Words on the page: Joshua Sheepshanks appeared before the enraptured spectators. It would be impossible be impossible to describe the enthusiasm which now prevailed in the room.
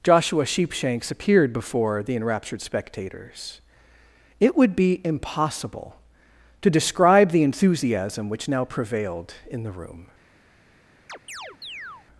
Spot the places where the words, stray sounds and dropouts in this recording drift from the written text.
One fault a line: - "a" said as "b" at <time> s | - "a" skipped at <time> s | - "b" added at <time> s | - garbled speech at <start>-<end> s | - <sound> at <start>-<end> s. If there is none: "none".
- "be impossible" skipped at 6.0 s
- chirp at 11.1-12.1 s